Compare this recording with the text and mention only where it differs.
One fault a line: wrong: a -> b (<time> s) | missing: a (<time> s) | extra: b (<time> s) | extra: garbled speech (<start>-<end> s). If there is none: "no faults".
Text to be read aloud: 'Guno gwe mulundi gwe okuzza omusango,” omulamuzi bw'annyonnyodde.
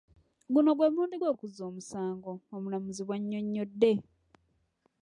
no faults